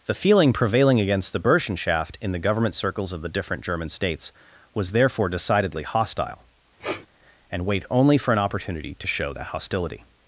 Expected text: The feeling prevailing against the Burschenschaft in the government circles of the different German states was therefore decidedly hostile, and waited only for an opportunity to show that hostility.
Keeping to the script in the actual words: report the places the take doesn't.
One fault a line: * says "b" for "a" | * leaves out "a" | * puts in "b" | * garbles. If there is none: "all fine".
* says "wait" for "waited"